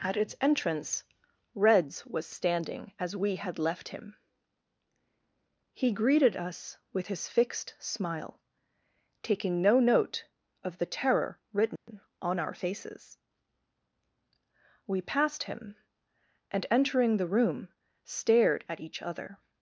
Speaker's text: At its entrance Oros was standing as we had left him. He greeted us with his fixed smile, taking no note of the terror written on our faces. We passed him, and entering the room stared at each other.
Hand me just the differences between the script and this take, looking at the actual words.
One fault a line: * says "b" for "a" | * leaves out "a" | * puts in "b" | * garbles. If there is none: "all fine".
* says "Reds" for "Oros"